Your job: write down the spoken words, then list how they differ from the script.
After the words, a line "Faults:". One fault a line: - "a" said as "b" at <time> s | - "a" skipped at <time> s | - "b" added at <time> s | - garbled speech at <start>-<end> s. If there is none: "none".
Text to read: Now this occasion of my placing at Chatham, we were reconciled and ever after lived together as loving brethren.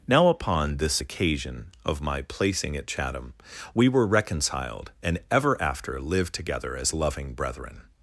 Now upon this occasion of my placing at Chatham, we were reconciled and ever after lived together as loving brethren.
Faults:
- "upon" added at 0.3 s